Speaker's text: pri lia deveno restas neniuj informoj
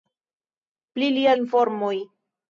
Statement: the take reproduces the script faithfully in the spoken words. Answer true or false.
false